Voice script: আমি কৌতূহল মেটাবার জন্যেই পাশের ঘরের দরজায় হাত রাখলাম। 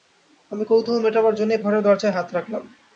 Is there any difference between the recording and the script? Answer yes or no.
yes